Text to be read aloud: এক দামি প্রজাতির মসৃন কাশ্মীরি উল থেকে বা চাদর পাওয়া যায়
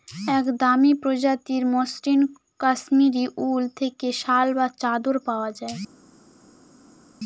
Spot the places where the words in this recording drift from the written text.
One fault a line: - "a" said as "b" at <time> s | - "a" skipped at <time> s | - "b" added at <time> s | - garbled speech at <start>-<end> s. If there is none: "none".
- "শাল" added at 4.2 s